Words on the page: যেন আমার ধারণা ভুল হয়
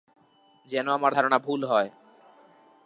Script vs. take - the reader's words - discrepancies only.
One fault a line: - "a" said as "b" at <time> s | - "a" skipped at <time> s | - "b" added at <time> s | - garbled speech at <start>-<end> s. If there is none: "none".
none